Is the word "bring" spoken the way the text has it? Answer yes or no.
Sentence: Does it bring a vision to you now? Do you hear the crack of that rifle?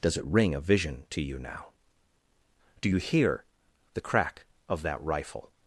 no